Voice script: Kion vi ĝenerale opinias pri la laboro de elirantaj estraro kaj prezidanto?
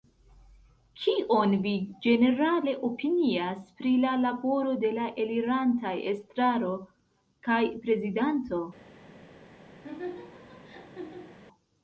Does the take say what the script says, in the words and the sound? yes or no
no